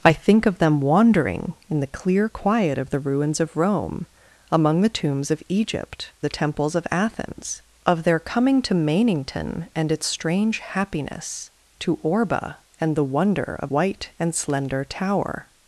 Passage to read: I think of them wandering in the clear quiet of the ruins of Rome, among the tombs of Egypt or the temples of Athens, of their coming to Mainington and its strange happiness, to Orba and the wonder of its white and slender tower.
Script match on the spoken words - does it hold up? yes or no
no